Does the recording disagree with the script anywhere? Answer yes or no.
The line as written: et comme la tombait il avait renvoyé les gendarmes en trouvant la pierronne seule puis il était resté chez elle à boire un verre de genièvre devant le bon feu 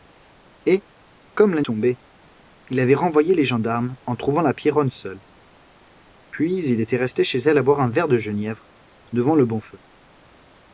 no